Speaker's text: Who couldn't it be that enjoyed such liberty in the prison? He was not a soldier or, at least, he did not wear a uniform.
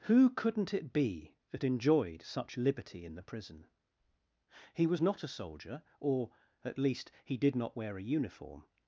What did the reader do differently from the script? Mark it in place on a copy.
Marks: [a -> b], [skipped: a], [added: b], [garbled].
Who couldn't it be that enjoyed such liberty in the prison? He was not a soldier or, at least, he did not wear a uniform.